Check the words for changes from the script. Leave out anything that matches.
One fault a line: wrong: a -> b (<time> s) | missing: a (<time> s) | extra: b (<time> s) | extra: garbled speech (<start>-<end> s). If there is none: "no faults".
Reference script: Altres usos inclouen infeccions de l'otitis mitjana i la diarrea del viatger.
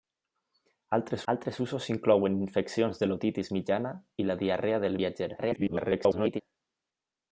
extra: altres (1.3 s)
extra: garbled speech (5.4-6.4 s)